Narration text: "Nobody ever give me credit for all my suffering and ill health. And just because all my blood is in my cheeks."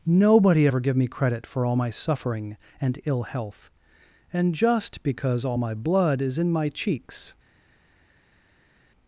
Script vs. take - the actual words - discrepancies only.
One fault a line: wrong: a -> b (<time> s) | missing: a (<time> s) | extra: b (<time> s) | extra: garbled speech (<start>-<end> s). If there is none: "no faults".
no faults